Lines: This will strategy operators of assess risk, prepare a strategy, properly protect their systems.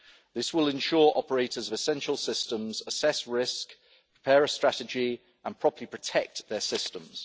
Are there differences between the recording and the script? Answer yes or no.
yes